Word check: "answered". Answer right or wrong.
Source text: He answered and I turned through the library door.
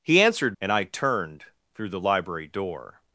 right